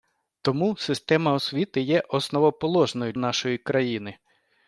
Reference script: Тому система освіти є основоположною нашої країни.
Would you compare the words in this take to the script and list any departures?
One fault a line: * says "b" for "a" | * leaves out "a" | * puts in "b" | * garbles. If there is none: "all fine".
all fine